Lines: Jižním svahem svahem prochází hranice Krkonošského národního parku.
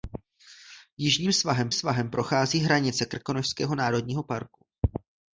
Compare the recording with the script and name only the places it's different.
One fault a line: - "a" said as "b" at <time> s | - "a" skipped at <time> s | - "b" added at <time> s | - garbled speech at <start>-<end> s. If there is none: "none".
none